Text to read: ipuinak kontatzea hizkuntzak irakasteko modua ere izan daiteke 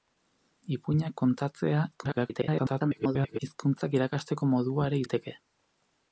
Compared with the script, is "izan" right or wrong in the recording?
wrong